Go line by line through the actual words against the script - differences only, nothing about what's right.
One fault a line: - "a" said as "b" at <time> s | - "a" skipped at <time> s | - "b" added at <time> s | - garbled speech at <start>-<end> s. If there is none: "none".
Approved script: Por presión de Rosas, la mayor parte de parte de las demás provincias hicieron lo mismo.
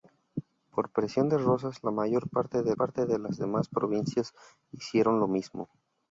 none